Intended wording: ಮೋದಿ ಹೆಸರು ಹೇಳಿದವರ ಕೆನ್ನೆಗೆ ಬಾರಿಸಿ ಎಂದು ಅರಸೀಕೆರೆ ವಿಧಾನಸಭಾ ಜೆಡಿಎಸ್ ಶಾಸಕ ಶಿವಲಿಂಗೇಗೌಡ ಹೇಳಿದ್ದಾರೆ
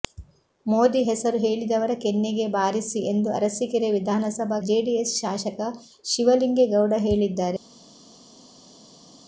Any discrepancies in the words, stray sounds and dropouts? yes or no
no